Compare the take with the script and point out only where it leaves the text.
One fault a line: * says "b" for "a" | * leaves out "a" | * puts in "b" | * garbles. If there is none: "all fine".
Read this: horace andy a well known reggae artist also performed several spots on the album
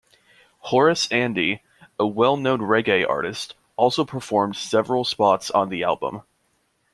all fine